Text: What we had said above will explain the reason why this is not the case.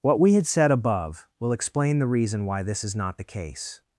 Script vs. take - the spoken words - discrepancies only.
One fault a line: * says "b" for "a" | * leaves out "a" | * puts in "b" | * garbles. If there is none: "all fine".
all fine